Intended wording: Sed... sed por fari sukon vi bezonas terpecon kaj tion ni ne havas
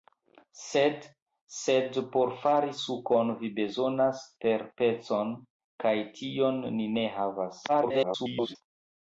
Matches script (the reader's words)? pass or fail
fail